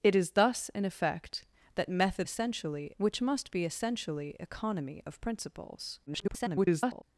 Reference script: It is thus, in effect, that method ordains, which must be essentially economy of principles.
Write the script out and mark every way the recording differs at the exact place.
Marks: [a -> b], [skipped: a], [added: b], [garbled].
It is thus, in effect, that method [ordains, -> essentially] which must be essentially economy of principles. [garbled]